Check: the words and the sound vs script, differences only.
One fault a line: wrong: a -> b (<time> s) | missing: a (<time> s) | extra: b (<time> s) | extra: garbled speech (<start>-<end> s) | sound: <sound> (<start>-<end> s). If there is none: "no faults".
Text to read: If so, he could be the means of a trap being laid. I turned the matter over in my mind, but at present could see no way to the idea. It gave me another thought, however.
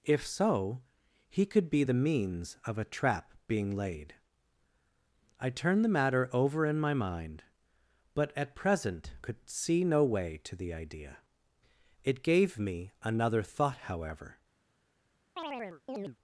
sound: chirp (15.4-16.2 s)